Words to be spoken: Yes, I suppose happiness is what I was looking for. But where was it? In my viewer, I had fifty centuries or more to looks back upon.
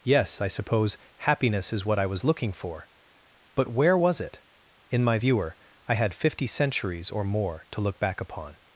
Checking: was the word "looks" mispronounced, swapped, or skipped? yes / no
yes